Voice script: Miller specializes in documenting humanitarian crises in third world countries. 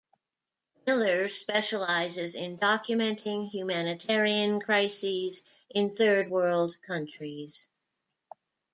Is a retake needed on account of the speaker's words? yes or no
no